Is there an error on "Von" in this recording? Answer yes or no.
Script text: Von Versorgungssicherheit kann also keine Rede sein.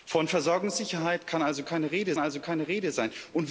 no